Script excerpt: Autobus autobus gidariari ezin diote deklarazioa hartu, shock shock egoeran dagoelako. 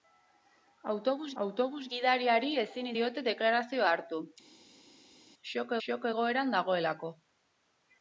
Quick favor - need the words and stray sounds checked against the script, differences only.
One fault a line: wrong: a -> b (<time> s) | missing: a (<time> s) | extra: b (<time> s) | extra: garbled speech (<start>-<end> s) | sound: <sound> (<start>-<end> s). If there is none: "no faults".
no faults